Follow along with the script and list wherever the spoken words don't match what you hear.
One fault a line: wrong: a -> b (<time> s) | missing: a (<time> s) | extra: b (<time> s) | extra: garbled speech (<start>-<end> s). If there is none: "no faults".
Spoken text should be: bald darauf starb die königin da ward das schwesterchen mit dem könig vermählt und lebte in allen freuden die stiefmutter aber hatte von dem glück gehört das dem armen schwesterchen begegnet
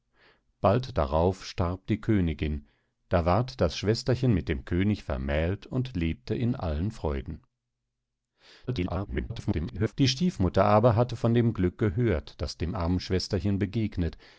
extra: garbled speech (8.7-9.9 s)